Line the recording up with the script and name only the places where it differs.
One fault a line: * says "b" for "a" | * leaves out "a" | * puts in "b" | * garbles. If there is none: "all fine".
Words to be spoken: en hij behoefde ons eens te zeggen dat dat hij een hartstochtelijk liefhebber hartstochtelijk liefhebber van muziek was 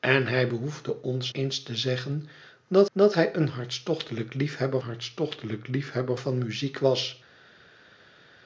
all fine